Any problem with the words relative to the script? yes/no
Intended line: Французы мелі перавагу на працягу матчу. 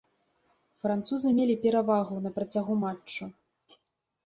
no